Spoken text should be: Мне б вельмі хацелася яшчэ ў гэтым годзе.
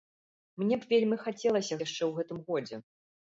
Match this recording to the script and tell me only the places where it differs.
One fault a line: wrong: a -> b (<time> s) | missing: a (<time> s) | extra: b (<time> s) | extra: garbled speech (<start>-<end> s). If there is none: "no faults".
no faults